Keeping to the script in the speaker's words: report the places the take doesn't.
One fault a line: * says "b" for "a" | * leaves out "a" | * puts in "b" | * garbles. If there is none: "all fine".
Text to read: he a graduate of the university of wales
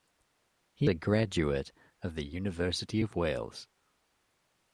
all fine